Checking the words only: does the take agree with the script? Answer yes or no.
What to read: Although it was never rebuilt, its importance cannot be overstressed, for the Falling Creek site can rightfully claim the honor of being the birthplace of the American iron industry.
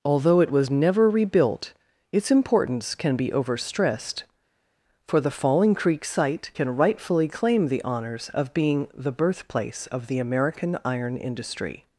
no